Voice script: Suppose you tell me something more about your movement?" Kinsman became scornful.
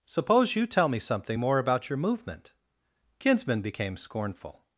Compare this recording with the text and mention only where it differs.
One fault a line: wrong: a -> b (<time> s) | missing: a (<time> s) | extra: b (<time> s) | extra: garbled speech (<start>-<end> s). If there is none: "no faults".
no faults